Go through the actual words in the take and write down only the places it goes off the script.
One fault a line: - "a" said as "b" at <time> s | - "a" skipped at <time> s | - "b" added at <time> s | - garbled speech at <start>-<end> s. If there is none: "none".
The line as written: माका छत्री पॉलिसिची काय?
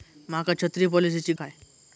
none